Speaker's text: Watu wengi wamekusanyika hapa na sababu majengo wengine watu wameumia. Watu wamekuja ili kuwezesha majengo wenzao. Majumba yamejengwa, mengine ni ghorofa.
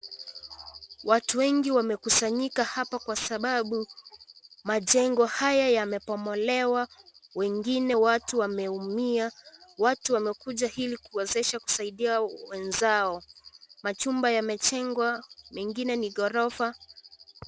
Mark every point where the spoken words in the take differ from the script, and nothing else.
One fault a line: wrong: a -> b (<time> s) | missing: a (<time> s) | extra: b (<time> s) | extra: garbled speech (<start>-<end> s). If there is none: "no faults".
wrong: na -> kwa (3.0 s)
extra: haya yamebomolewa (5.3 s)
wrong: majengo -> kusaidia (11.6 s)